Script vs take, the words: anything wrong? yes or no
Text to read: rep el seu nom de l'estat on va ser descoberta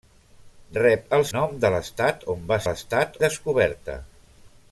yes